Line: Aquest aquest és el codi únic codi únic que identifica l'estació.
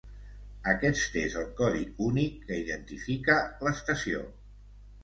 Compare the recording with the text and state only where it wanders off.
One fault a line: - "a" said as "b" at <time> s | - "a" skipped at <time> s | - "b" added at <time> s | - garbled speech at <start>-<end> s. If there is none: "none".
- "aquest" skipped at 1.2 s
- "codi únic" skipped at 2.4 s